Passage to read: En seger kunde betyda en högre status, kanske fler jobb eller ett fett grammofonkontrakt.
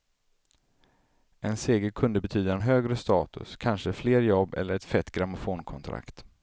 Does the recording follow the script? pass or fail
pass